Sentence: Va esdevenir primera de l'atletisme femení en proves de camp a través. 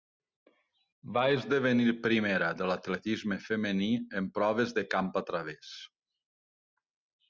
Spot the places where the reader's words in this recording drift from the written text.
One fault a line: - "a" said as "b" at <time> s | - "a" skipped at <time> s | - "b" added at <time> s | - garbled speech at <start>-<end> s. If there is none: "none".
none